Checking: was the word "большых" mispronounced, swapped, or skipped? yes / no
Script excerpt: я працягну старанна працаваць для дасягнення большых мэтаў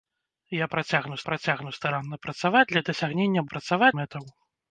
yes